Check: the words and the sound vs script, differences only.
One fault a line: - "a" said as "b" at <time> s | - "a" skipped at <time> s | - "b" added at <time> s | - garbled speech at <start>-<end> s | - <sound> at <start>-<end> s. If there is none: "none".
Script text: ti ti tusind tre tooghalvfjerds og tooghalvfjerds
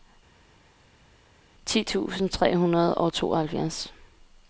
- "ti" skipped at 1.8 s
- "tooghalvfjerds" said as "hundrede" at 2.6 s